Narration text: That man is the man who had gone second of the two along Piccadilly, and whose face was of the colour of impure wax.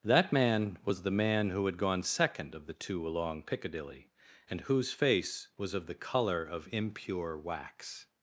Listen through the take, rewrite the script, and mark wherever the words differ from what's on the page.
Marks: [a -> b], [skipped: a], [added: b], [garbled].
That man [is -> was] the man who had gone second of the two along Piccadilly, and whose face was of the colour of impure wax.